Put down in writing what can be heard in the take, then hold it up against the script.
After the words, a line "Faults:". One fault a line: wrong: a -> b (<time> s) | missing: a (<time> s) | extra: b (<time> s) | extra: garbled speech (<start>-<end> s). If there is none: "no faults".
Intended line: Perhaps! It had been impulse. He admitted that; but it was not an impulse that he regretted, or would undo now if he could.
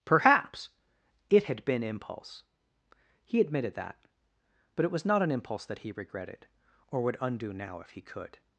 Perhaps! It had been impulse. He admitted that; but it was not an impulse that he regretted, or would undo now if he could.
Faults:
no faults